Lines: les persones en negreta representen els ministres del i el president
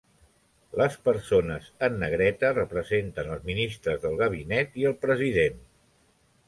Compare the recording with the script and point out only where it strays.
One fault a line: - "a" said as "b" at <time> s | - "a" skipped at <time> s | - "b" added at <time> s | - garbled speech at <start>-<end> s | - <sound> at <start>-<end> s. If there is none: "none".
- "gabinet" added at 4.2 s